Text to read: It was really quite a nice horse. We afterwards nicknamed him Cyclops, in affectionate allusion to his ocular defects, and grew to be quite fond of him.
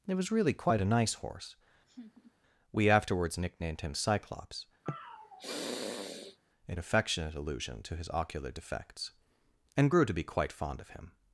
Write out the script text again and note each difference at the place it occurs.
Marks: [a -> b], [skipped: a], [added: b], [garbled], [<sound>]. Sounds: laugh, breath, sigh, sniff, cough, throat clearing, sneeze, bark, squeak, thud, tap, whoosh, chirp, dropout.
It was really quite a nice horse. [laugh] We afterwards nicknamed him Cyclops, [sniff] in affectionate allusion to his ocular defects, and grew to be quite fond of him.